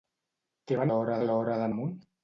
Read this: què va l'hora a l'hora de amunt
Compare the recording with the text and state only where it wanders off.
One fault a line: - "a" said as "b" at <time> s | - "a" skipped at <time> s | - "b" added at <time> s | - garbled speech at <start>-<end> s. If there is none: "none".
none